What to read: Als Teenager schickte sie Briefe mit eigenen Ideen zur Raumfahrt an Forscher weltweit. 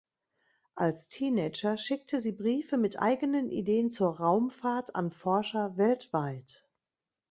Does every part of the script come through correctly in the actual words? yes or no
yes